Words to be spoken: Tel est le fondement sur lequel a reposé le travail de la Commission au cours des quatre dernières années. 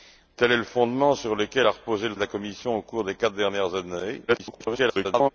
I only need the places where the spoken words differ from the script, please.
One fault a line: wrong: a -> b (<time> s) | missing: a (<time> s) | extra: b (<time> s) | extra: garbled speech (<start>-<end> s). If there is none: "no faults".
missing: travail (2.2 s)
extra: garbled speech (4.3-5.3 s)